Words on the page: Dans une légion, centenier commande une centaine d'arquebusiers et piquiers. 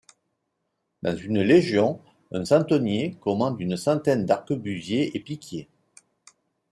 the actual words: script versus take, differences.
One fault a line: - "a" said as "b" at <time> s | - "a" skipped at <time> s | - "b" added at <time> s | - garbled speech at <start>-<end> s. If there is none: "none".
- "un" added at 2.3 s